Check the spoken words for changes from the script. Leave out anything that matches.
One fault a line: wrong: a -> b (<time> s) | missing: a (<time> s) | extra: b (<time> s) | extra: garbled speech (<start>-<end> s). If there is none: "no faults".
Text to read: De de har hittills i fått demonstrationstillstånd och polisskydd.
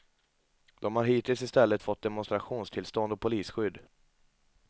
missing: de (0.9 s)
extra: stället (1.5 s)